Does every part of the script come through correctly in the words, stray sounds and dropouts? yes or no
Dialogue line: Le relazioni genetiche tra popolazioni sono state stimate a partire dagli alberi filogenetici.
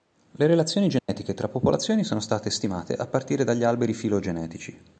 no